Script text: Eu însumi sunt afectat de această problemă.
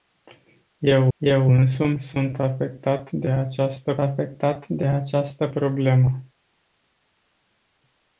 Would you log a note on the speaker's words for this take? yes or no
yes